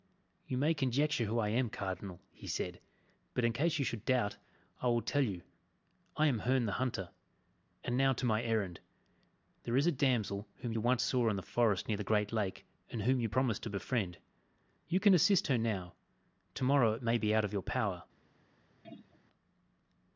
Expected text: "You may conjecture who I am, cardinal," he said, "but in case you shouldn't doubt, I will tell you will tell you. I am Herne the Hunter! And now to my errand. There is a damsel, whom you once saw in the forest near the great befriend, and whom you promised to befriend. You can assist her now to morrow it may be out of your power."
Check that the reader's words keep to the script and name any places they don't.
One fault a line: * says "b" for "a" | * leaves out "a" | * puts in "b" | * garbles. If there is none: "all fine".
* says "should" for "shouldn't"
* leaves out "will tell you"
* says "lake" for "befriend"